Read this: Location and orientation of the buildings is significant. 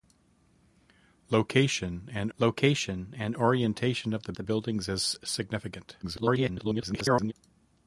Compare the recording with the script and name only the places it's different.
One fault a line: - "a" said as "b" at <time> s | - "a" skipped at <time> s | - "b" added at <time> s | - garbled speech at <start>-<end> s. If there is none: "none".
- "location and" added at 2.4 s
- "the" added at 4.3 s
- garbled speech at 6.0-7.3 s